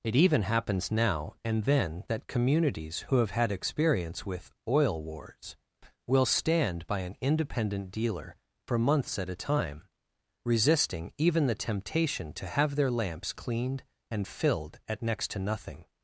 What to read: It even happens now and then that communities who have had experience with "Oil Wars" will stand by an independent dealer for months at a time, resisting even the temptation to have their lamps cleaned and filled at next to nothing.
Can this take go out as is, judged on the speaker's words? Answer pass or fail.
pass